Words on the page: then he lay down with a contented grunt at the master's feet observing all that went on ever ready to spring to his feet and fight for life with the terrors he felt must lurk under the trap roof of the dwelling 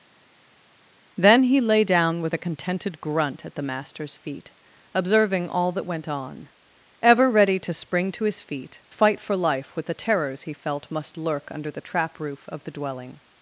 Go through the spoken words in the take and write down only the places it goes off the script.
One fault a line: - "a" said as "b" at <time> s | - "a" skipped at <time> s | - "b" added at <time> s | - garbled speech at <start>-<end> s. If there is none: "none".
- "and" skipped at 8.8 s